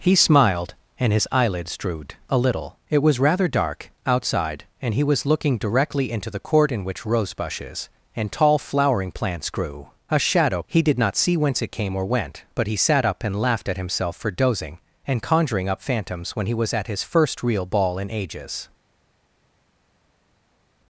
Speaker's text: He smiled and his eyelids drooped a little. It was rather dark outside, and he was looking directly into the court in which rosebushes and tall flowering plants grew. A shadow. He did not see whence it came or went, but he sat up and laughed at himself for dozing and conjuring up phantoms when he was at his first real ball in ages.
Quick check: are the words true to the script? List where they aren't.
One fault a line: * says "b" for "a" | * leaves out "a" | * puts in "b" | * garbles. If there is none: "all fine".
all fine